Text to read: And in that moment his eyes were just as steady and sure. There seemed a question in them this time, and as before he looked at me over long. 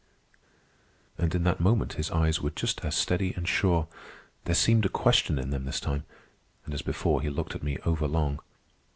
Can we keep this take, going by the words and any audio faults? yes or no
yes